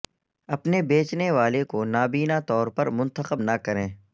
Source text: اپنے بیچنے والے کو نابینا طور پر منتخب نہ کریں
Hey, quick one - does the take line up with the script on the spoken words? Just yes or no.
yes